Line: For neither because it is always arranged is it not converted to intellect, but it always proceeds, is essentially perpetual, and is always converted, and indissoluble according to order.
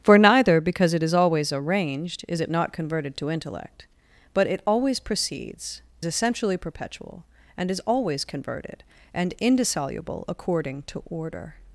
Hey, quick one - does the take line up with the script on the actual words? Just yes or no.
no